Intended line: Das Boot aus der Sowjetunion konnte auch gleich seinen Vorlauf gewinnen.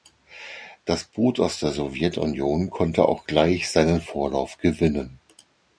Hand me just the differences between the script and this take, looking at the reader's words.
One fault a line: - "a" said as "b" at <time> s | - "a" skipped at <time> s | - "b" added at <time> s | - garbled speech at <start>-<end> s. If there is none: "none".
none